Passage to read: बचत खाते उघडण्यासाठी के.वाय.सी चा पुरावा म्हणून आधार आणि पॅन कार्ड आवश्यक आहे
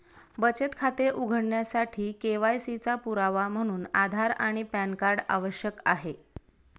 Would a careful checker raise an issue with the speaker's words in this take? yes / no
no